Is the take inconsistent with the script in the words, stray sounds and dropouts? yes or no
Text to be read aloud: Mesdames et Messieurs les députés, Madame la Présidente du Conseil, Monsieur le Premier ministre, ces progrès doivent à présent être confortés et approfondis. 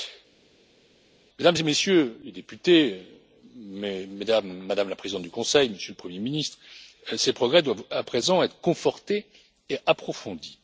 no